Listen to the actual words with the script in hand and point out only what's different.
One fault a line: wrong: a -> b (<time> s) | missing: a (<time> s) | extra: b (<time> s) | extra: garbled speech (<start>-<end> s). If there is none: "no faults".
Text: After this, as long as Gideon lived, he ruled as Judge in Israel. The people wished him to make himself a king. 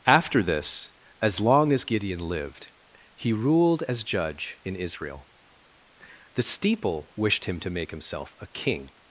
wrong: people -> steeple (6.4 s)